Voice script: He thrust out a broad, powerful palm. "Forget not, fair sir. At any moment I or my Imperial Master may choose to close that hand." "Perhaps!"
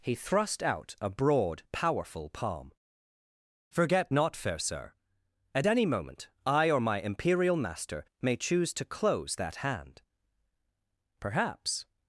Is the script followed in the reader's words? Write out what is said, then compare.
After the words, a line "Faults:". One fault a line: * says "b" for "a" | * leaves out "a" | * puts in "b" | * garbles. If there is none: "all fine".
He thrust out a broad, powerful palm. "Forget not, fair sir. At any moment I or my Imperial Master may choose to close that hand." "Perhaps!"
Faults:
all fine